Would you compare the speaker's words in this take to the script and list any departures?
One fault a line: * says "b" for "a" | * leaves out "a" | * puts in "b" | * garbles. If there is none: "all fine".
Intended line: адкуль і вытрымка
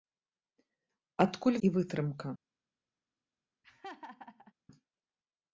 all fine